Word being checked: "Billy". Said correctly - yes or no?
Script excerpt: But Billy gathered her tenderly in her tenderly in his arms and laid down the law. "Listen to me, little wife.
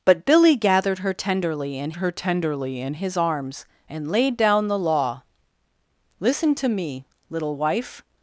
yes